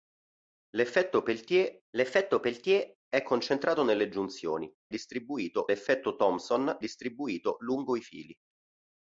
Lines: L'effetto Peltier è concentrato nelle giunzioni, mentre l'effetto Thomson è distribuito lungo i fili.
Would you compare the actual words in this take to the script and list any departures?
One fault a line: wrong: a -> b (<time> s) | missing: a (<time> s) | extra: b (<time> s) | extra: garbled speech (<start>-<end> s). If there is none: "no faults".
extra: l'effetto Peltier (1.9 s)
wrong: mentre -> distribuito (4.9 s)
missing: è (6.8 s)